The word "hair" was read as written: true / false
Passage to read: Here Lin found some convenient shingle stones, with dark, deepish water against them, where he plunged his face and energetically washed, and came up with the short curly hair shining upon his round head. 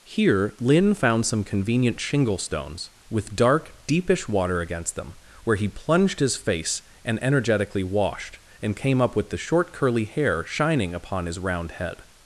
true